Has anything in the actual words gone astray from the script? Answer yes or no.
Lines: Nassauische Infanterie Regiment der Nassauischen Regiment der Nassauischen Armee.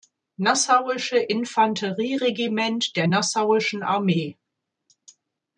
yes